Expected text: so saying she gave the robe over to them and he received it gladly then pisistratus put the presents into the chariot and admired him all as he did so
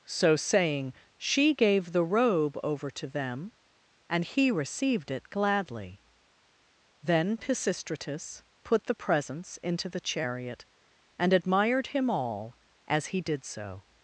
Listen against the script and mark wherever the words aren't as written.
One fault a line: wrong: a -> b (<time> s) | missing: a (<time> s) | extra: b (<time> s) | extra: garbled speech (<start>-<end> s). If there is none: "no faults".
no faults